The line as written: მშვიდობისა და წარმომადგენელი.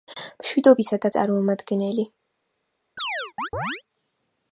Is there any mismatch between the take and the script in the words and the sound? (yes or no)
yes